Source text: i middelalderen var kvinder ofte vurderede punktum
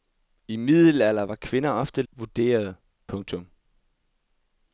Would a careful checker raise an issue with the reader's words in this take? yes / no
no